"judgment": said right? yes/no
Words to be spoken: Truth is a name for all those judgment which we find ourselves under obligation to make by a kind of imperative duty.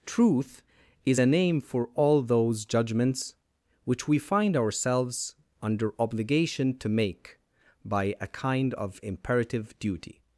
no